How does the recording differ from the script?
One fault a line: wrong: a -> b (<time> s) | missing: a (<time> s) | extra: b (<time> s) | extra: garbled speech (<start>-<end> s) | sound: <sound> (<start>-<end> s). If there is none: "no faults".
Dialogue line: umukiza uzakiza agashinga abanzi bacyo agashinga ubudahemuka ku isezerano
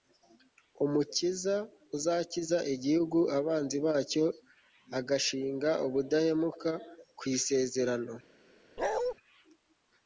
wrong: agashinga -> igihugu (2.7 s)
sound: bark (8.8-9.1 s)